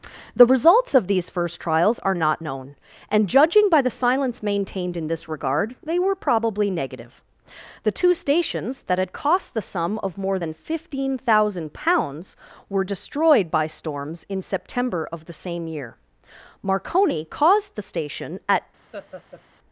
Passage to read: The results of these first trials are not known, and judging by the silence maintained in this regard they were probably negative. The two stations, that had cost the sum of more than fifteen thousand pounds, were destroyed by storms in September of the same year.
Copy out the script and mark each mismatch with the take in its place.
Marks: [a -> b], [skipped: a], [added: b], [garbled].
The results of these first trials are not known, and judging by the silence maintained in this regard they were probably negative. The two stations, that had cost the sum of more than fifteen thousand pounds, were destroyed by storms in September of the same year. [added: Marconi caused the station at]